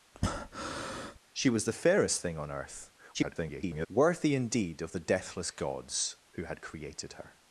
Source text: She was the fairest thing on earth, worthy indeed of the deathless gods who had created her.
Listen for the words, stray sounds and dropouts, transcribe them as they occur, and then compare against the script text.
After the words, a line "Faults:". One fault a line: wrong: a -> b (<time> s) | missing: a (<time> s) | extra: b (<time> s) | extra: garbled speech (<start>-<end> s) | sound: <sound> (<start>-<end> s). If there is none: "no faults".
She was the fairest thing on earth, [garbled] worthy indeed of the deathless gods who had created her.
Faults:
sound: breath (0.1-1.2 s)
extra: garbled speech (3.1-3.9 s)